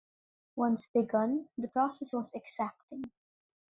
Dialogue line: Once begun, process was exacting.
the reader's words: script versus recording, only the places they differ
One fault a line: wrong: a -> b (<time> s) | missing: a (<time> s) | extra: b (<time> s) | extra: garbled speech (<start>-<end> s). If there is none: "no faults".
extra: the (1.6 s)